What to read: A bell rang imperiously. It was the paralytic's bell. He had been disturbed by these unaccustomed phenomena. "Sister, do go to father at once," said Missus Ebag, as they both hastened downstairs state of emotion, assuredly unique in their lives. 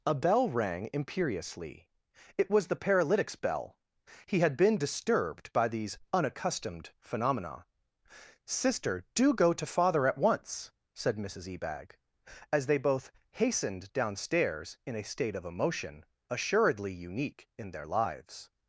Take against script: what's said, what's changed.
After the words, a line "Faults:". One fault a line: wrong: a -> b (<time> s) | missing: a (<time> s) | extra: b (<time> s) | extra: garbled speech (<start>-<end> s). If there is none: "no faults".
A bell rang imperiously. It was the paralytic's bell. He had been disturbed by these unaccustomed phenomena. "Sister, do go to father at once," said Missus Ebag, as they both hastened downstairs in a state of emotion, assuredly unique in their lives.
Faults:
extra: in a (14.9 s)